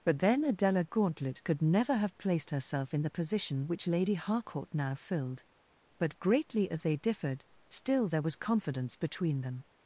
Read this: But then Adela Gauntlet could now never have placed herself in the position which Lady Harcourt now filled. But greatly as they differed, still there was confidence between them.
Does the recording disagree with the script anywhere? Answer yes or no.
yes